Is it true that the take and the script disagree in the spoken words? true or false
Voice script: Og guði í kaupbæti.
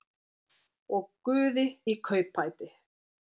false